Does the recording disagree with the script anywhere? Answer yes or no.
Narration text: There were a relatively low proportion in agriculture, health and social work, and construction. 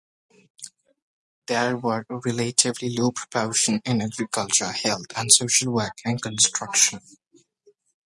no